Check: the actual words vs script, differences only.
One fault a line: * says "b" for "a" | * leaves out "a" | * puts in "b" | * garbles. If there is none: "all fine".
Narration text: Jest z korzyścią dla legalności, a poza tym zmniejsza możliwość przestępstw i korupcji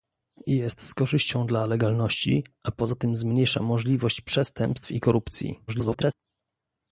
* garbles